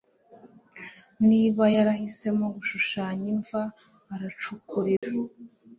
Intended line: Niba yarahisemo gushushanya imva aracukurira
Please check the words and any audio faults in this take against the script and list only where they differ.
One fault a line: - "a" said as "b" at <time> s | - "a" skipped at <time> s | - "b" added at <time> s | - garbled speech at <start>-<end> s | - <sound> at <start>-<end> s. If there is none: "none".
- dropout at 5.0-5.0 s